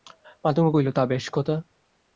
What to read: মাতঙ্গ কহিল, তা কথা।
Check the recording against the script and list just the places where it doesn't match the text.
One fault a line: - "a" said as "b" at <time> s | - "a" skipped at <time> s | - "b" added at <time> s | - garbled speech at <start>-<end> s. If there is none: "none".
- "বেশ" added at 1.0 s